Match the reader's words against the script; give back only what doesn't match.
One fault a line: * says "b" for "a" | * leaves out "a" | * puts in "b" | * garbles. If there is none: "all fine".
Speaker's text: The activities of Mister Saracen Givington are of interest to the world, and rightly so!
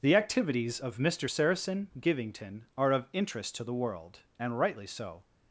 all fine